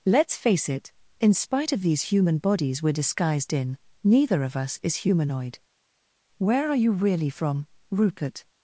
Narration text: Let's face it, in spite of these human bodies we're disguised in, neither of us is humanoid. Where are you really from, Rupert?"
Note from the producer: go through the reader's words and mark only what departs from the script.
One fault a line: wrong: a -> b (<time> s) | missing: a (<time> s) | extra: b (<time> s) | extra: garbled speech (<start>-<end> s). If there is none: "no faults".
no faults